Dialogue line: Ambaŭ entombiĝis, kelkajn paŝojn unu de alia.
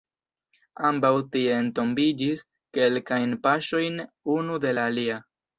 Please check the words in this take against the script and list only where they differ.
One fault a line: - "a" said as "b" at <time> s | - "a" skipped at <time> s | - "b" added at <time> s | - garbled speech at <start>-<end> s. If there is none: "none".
- "tie" added at 1.4 s
- "la" added at 4.8 s